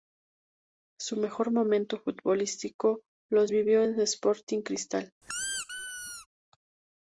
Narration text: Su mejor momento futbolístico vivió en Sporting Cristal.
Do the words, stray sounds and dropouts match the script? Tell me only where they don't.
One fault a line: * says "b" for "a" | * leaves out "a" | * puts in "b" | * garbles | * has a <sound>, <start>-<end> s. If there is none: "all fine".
* puts in "los"
* has a squeak, 5.2-6.3 s